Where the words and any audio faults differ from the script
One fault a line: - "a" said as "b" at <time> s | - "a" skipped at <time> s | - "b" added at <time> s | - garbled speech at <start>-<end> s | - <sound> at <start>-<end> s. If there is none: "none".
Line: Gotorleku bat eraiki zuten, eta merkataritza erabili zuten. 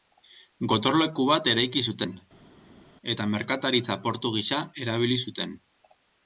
- "portu gisa" added at 4.1 s